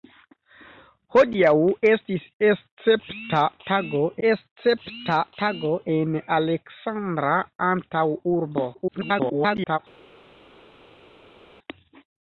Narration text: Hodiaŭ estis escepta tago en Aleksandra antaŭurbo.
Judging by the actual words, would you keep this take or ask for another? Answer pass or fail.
fail